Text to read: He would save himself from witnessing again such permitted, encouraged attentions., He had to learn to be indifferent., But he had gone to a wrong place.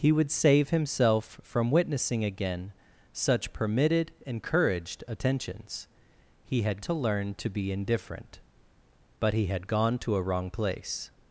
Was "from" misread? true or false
false